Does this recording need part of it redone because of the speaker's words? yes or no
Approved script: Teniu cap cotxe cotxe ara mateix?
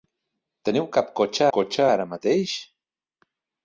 no